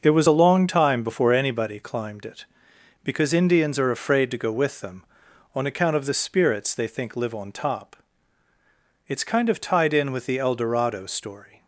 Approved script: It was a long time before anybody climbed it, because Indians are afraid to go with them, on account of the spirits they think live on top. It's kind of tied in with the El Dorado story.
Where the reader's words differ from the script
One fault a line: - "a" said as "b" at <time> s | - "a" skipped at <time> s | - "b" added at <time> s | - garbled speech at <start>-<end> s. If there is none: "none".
none